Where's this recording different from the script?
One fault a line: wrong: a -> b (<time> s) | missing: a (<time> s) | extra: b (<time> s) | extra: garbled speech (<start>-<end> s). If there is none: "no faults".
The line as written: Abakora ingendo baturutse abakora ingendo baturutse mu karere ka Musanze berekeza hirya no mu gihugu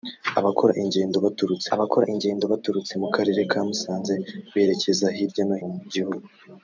no faults